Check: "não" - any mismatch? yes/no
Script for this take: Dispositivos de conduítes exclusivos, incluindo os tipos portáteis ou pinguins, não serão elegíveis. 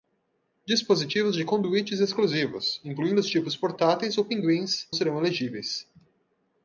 yes